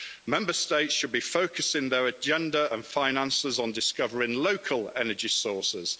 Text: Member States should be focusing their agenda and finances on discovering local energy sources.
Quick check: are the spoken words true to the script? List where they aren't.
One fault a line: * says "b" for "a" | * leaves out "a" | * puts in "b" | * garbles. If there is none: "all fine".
all fine